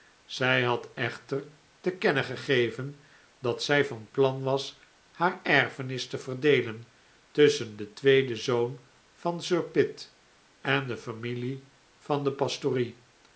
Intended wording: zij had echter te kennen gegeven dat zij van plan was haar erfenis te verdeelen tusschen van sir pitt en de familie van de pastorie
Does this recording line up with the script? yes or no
no